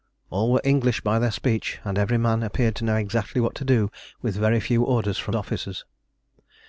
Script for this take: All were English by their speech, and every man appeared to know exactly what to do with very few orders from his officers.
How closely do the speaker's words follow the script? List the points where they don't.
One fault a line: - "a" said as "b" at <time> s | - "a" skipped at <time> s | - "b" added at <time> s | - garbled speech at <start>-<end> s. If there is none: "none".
- "his" skipped at 5.3 s